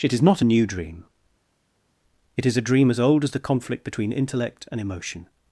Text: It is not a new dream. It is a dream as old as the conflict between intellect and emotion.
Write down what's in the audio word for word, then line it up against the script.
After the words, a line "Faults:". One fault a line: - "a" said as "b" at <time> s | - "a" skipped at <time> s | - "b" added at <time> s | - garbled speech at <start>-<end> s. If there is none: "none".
It is not a new dream. It is a dream as old as the conflict between intellect and emotion.
Faults:
none